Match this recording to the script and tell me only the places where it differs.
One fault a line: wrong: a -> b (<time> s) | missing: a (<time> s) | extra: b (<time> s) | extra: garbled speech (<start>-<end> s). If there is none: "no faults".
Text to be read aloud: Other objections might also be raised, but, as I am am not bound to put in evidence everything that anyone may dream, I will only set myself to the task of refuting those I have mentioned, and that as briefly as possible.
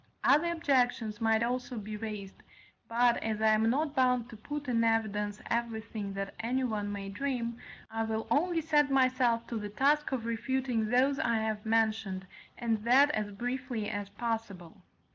missing: am (3.7 s)